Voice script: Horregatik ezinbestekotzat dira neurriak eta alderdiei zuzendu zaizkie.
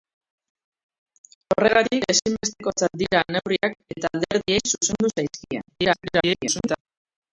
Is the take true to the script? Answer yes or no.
no